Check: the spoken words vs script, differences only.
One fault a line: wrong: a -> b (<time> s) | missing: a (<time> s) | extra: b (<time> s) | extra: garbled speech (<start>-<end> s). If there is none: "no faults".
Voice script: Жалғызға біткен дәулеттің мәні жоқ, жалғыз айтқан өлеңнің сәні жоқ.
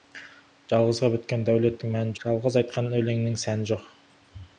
missing: жоқ (2.2 s)